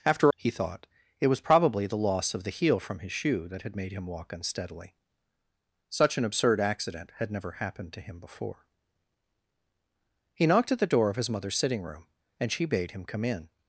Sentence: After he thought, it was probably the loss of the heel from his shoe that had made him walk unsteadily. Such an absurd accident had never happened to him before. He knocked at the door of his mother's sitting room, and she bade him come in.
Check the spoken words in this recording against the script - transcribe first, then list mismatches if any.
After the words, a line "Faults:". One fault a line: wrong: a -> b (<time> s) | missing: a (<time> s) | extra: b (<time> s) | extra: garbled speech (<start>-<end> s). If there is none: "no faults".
After he thought, it was probably the loss of the heel from his shoe that had made him walk unsteadily. Such an absurd accident had never happened to him before. He knocked at the door of his mother's sitting room, and she bade him come in.
Faults:
no faults